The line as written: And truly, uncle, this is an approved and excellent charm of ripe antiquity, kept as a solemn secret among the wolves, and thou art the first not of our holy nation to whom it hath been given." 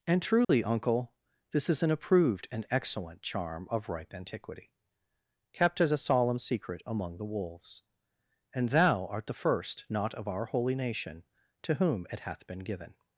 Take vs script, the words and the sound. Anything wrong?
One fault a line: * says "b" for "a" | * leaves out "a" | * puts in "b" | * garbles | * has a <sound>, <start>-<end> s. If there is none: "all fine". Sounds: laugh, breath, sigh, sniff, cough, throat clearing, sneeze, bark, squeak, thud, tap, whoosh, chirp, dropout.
* has a dropout, 0.4-0.5 s